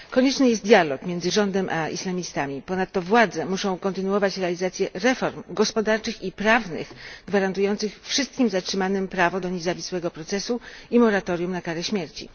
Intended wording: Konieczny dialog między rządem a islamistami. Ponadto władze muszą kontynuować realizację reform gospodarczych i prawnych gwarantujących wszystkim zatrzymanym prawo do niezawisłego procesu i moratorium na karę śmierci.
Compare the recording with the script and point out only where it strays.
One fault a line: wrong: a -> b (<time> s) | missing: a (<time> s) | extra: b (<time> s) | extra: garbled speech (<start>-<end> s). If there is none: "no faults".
extra: jest (0.5 s)